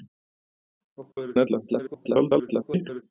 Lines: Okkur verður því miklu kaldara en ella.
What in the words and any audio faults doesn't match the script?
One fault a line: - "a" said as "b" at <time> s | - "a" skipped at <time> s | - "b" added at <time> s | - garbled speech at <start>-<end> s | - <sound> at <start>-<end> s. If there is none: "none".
- dropout at 1.1-1.2 s
- "því miklu kaldara" skipped at 1.4 s
- garbled speech at 1.7-3.0 s